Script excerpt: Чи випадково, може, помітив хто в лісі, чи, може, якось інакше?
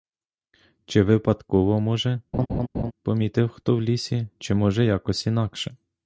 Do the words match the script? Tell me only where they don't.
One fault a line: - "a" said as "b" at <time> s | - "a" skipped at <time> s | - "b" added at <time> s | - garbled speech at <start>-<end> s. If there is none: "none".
none